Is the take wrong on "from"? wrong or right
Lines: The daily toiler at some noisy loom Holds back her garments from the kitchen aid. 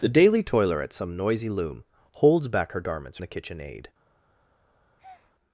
wrong